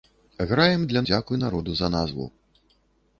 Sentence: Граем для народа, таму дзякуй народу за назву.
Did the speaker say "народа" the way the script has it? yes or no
no